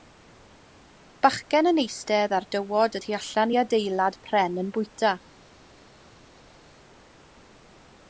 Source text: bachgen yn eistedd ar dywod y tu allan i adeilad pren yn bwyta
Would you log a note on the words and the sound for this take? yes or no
no